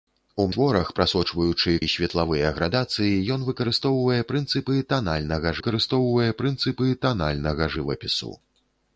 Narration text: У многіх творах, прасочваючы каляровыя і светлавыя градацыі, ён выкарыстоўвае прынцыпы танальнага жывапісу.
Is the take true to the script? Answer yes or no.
no